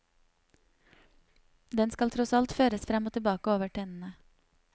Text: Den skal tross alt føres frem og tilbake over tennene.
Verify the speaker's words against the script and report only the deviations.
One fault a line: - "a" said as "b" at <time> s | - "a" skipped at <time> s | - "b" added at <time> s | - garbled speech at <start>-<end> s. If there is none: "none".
none